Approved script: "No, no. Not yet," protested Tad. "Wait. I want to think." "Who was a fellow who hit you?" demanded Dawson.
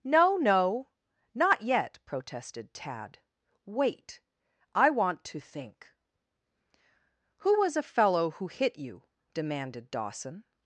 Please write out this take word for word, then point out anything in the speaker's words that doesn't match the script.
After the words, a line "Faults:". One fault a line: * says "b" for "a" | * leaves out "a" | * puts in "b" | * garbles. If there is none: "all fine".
"No, no. Not yet," protested Tad. "Wait. I want to think." "Who was a fellow who hit you?" demanded Dawson.
Faults:
all fine